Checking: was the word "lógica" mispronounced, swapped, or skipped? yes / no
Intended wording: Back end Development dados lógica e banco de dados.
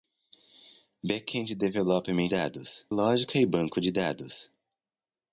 no